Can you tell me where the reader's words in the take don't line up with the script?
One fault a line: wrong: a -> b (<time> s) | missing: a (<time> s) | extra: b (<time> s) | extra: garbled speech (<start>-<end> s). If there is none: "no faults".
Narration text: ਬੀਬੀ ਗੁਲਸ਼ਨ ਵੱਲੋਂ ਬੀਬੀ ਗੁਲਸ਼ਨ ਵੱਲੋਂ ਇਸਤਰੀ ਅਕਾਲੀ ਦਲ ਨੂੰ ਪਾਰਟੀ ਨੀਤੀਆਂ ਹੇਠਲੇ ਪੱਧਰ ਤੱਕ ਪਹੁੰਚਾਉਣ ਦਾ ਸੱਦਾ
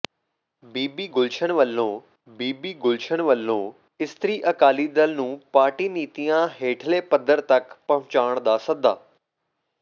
no faults